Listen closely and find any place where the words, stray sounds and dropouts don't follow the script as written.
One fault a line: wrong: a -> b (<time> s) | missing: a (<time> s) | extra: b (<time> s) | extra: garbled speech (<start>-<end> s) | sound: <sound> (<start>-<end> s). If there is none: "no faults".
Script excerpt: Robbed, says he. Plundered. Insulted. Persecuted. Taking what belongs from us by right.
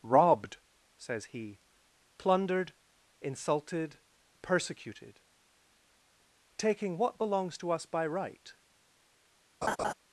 wrong: from -> to (7.6 s)
sound: laugh (9.6-9.9 s)